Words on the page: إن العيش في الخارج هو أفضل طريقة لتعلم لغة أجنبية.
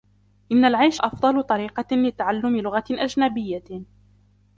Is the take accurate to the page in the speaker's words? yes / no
no